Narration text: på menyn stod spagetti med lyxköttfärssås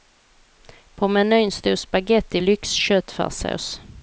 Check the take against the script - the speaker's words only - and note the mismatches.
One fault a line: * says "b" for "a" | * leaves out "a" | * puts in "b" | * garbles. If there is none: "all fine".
* leaves out "med"